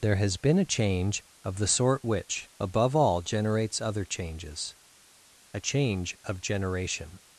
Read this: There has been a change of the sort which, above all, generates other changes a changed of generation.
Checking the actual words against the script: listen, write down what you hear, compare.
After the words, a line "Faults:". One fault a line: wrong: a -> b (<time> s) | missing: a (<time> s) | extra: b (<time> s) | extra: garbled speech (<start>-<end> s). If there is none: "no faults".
There has been a change of the sort which, above all, generates other changes a change of generation.
Faults:
wrong: changed -> change (5.6 s)